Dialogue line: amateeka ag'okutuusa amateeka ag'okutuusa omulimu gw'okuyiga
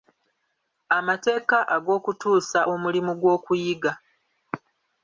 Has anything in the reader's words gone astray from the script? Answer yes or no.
yes